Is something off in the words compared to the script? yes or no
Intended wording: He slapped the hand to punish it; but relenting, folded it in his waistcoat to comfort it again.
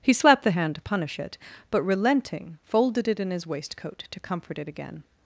no